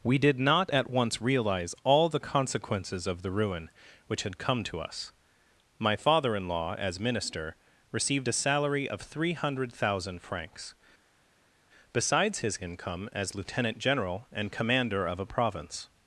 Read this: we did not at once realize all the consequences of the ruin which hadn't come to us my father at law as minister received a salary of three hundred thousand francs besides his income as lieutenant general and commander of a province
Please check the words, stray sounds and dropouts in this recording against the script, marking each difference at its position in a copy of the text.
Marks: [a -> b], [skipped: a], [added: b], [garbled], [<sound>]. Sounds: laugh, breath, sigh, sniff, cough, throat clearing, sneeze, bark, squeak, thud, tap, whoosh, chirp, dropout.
we did not at once realize all the consequences of the ruin which [hadn't -> had] come to us my father [at -> in] law as minister received a salary of three hundred thousand francs besides his income as lieutenant general and commander of a province